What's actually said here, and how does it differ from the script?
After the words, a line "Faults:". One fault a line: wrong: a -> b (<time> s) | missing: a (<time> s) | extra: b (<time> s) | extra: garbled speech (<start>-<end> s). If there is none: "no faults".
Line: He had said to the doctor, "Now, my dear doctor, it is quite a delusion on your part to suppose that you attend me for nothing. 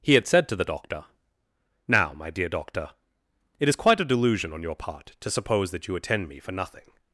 He had said to the doctor, "Now, my dear doctor, it is quite a delusion on your part to suppose that you attend me for nothing.
Faults:
no faults